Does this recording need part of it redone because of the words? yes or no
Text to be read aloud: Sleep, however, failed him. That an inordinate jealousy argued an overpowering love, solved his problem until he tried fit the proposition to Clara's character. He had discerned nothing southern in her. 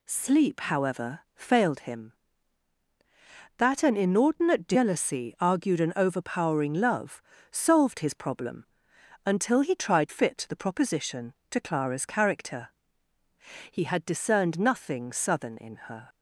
no